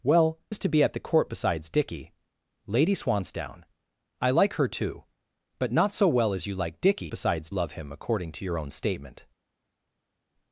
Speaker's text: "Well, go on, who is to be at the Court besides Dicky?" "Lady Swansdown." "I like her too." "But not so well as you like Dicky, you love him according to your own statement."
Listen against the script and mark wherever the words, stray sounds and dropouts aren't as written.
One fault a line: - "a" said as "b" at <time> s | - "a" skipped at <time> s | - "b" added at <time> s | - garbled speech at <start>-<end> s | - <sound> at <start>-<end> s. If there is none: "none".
- "go on who" skipped at 0.4 s
- "you" said as "besides" at 7.1 s